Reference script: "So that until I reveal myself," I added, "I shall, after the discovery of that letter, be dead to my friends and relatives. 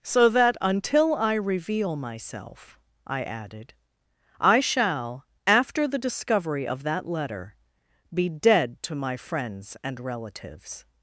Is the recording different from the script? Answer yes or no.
no